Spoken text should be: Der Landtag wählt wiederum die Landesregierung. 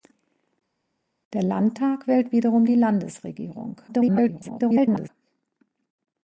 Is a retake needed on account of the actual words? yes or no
yes